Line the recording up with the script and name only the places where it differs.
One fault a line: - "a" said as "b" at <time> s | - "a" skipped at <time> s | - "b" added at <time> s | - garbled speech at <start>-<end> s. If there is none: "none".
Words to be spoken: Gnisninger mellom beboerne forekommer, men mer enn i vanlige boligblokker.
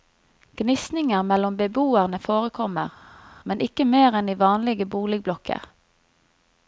- "ikke" added at 3.7 s